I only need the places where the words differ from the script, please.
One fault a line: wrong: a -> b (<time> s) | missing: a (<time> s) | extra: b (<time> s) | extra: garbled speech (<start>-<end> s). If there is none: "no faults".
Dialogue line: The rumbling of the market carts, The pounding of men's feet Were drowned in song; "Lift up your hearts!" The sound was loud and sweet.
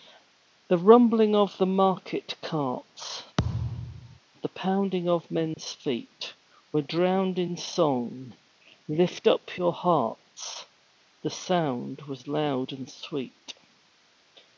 no faults